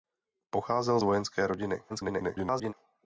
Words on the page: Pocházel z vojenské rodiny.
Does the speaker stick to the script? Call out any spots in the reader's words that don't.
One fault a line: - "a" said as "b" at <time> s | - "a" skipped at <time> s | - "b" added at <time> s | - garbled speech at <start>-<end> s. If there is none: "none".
- garbled speech at 1.9-2.7 s